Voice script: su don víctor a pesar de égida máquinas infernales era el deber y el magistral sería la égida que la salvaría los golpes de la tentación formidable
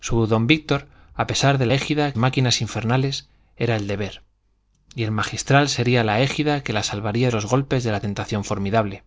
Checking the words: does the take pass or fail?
pass